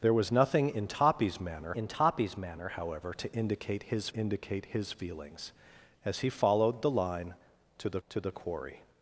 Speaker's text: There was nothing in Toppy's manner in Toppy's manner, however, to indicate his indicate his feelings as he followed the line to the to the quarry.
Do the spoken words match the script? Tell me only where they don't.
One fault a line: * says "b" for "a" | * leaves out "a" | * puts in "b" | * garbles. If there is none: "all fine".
all fine